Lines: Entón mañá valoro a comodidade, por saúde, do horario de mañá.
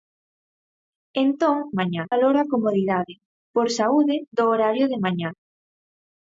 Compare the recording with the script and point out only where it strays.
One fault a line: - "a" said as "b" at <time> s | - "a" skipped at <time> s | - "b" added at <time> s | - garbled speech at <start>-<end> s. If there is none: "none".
none